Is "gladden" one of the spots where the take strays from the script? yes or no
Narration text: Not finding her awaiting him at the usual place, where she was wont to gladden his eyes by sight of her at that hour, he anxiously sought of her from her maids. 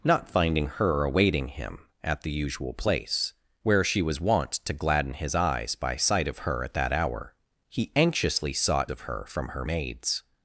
no